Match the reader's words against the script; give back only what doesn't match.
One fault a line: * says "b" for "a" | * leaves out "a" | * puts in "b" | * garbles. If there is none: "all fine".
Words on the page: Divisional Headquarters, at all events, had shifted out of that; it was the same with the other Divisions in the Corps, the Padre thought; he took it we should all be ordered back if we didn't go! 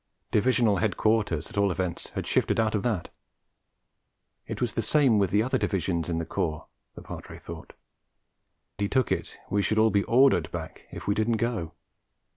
all fine